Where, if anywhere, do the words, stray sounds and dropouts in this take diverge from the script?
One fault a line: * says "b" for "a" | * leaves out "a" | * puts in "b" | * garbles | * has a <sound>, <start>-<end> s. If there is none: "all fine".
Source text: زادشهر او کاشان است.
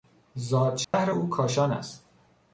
* has a dropout, 0.8-0.9 s